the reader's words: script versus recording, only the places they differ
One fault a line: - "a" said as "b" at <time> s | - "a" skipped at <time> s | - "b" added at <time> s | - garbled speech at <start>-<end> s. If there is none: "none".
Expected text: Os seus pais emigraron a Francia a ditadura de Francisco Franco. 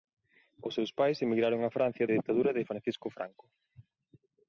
none